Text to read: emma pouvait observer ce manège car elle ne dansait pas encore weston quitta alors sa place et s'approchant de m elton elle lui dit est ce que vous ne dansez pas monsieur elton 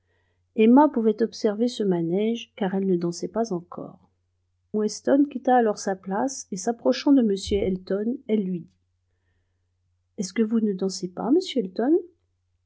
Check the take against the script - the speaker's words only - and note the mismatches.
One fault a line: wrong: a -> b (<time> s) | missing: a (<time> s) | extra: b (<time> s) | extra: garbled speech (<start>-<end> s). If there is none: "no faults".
no faults